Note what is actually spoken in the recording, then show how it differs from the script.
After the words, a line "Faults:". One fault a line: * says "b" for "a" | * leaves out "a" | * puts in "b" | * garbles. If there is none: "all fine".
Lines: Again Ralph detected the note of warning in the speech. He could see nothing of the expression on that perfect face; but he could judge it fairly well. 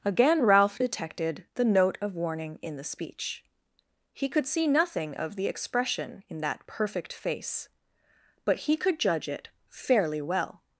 Again Ralph detected the note of warning in the speech. He could see nothing of the expression in that perfect face; but he could judge it fairly well.
Faults:
* says "in" for "on"